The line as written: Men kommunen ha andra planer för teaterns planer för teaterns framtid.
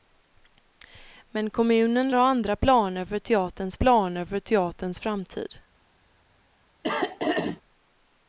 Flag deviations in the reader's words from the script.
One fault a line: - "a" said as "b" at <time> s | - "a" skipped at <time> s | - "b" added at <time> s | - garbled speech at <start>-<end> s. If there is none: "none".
none